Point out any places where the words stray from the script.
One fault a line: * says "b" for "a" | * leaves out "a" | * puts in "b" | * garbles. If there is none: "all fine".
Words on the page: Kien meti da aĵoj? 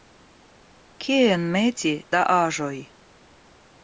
all fine